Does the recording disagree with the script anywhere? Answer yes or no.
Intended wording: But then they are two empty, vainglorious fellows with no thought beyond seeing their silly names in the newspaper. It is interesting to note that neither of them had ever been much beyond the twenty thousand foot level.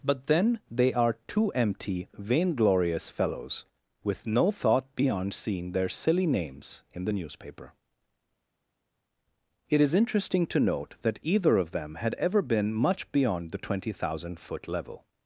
yes